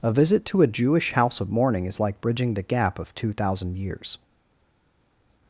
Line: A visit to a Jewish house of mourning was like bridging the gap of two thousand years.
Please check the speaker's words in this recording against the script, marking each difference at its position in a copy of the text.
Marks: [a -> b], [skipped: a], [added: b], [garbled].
A visit to a Jewish house of mourning [was -> is] like bridging the gap of two thousand years.